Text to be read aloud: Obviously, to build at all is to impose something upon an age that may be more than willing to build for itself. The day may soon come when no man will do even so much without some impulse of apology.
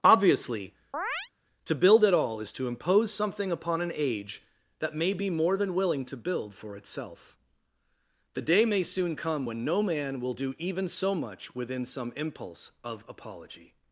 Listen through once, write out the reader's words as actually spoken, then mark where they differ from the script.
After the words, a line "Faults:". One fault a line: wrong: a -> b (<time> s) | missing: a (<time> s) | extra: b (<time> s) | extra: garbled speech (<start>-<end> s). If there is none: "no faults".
Obviously, to build at all is to impose something upon an age that may be more than willing to build for itself. The day may soon come when no man will do even so much within some impulse of apology.
Faults:
wrong: without -> within (11.6 s)